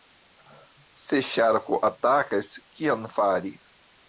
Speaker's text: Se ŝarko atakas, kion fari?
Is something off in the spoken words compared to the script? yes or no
no